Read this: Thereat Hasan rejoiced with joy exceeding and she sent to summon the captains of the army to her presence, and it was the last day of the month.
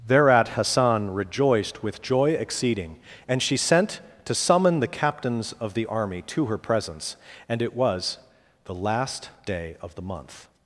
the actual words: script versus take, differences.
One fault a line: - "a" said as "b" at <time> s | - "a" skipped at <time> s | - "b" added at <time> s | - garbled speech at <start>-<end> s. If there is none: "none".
none